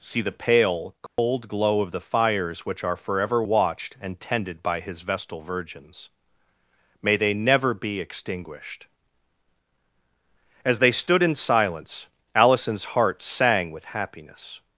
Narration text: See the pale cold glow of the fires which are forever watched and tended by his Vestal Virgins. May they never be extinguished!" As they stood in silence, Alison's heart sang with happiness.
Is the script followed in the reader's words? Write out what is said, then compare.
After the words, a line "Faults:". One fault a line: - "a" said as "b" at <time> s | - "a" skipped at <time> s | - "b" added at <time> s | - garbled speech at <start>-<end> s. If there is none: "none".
See the pale cold glow of the fires which are forever watched and tended by his Vestal Virgins. May they never be extinguished!" As they stood in silence, Alison's heart sang with happiness.
Faults:
none